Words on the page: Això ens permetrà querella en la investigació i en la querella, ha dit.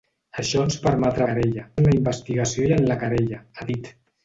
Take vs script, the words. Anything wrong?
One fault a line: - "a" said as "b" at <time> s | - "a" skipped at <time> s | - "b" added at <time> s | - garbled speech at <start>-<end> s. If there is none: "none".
none